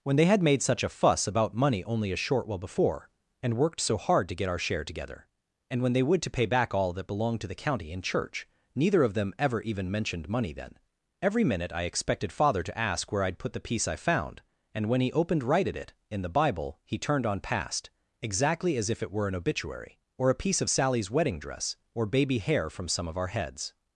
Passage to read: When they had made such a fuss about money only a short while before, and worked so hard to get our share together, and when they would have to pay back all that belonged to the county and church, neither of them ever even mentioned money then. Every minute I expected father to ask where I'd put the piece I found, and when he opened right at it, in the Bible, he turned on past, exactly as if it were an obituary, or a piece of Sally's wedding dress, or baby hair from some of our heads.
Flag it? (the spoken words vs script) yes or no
yes